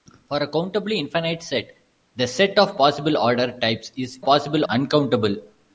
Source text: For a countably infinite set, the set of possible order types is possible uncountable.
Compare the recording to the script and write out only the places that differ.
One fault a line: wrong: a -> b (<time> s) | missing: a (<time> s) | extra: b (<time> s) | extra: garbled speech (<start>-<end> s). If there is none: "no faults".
no faults